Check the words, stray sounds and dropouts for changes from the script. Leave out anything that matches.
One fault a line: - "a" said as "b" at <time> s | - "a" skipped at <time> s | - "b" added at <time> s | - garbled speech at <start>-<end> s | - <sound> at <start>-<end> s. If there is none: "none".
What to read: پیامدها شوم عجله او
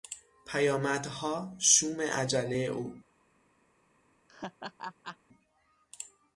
- laugh at 4.3-5.2 s